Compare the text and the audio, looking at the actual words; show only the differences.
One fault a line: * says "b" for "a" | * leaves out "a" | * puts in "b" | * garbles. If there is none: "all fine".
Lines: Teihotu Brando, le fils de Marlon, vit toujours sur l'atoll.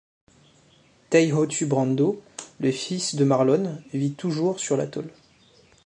all fine